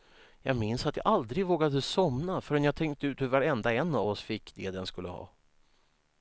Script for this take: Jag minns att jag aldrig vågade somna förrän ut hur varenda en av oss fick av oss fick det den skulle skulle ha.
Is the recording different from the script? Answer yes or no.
yes